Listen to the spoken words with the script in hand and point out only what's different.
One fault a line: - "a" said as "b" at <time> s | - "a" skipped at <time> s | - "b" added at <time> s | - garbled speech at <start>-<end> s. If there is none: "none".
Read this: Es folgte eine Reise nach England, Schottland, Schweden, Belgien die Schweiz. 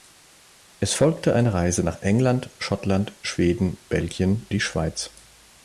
none